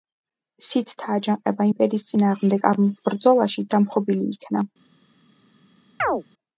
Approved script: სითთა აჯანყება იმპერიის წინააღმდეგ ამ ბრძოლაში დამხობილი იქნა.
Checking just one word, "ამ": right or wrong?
right